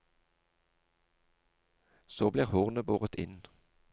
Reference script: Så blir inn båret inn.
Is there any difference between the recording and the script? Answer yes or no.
yes